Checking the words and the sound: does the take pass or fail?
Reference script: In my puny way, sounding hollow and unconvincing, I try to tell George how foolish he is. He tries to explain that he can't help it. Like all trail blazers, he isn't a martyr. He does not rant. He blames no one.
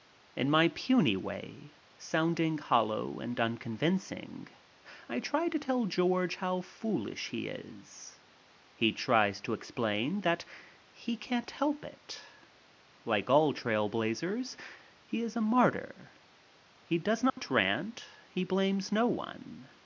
fail